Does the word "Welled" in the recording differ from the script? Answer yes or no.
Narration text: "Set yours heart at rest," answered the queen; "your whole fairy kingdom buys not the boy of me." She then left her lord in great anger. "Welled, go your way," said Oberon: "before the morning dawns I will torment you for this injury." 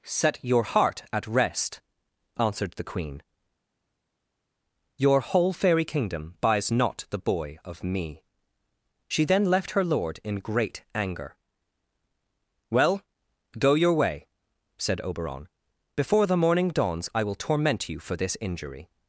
yes